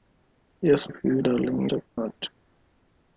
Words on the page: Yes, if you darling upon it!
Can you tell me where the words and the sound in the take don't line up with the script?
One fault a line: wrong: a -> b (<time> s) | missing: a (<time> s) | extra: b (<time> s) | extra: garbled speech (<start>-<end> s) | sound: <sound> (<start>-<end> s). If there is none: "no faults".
sound: dropout (1.9-2.0 s)